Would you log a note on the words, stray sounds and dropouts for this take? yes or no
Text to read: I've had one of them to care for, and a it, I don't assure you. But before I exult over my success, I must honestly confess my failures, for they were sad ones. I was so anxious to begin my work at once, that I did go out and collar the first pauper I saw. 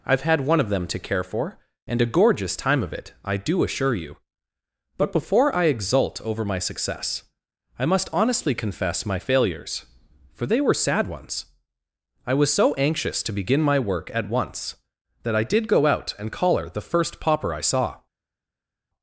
yes